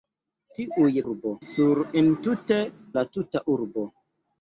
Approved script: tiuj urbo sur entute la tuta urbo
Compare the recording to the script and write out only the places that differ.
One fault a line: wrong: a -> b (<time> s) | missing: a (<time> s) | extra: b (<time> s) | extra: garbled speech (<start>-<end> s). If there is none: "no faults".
no faults